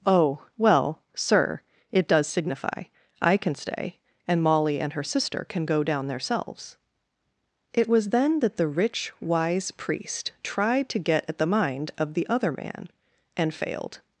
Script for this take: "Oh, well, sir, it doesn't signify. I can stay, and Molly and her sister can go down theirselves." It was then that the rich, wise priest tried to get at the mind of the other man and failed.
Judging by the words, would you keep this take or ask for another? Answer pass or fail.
fail